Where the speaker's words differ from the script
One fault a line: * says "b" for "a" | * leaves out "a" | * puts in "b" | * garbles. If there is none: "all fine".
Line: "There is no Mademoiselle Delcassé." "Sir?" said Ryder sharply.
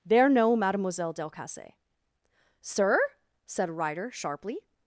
* leaves out "is"